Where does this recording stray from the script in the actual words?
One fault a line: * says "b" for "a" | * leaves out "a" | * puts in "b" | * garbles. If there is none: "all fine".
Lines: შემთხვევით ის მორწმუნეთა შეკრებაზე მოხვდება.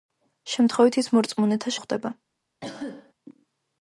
* leaves out "შეკრებაზე"